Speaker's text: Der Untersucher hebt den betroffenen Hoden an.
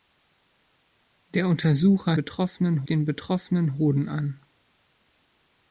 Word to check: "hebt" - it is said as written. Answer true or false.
false